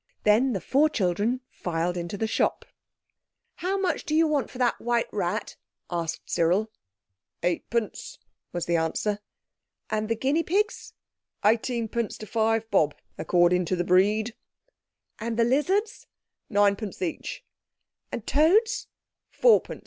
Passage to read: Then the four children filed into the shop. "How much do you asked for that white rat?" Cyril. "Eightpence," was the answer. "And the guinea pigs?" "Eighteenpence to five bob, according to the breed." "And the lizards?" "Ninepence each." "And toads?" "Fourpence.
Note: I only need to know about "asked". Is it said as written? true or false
false